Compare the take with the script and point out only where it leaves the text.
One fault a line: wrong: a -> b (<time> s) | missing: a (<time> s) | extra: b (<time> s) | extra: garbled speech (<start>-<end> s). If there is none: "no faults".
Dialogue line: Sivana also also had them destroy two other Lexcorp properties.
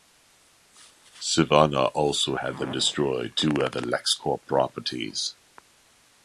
missing: also (2.4 s)